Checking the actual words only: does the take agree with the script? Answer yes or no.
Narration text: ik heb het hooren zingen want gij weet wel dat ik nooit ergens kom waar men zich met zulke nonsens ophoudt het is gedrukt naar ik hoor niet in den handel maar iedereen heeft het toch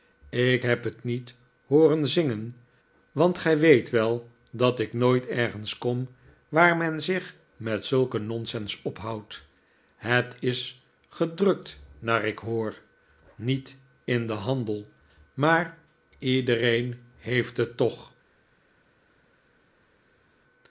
no